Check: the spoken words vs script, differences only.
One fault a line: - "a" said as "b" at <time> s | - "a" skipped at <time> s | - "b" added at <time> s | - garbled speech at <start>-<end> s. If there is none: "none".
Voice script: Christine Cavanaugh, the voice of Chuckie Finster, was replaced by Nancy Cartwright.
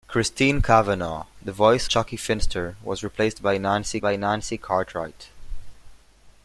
- "of" skipped at 1.9 s
- "by Nancy" added at 4.0 s